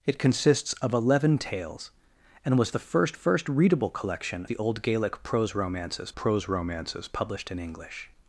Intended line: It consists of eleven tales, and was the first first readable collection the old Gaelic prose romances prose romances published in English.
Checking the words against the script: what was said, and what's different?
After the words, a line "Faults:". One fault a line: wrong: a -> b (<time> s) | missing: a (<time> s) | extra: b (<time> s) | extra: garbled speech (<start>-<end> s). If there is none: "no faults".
It consists of eleven tales, and was the first first readable collection the old Gaelic prose romances prose romances published in English.
Faults:
no faults